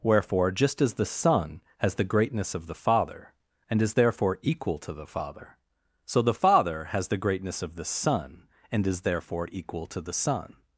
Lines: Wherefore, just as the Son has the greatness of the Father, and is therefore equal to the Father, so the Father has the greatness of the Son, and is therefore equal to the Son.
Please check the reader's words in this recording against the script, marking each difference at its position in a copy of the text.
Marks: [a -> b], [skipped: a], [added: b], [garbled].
Wherefore, just as the Son has the greatness of the Father, and is therefore equal to the Father, so the Father has the greatness of the Son, and is therefore equal to the Son.